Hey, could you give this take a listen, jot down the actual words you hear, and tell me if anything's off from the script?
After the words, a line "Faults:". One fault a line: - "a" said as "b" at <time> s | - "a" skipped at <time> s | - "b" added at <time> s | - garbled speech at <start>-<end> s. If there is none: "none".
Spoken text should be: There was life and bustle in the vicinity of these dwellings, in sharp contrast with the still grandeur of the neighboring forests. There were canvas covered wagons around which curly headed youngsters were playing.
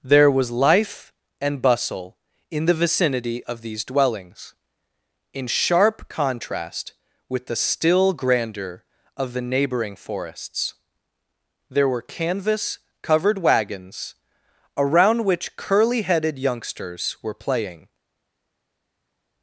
There was life and bustle in the vicinity of these dwellings, in sharp contrast with the still grandeur of the neighboring forests. There were canvas covered wagons around which curly headed youngsters were playing.
Faults:
none